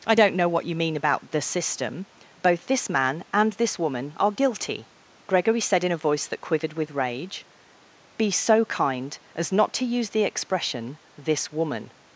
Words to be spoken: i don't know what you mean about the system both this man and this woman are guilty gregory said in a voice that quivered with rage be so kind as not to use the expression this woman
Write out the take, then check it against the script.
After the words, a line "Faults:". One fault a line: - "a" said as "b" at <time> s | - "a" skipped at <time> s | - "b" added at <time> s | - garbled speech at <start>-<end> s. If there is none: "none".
i don't know what you mean about the system both this man and this woman are guilty gregory said in a voice that quivered with rage be so kind as not to use the expression this woman
Faults:
none